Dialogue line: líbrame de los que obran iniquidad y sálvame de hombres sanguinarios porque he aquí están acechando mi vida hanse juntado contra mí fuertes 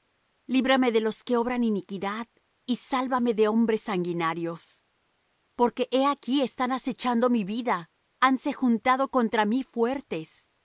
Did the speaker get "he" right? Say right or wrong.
right